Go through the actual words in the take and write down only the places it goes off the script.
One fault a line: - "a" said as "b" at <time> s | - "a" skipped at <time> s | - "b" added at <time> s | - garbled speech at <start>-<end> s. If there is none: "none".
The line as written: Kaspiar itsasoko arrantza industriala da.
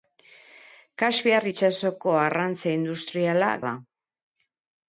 none